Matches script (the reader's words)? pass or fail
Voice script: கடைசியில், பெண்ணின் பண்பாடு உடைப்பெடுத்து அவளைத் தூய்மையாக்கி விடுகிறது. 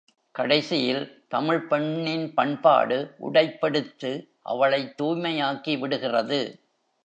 fail